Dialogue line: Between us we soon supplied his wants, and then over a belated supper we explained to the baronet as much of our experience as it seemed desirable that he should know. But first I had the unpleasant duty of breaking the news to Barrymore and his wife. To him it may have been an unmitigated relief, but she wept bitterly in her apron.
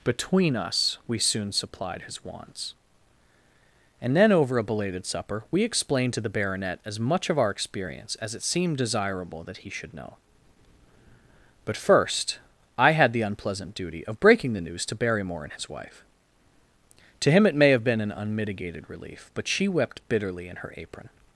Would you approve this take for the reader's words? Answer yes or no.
yes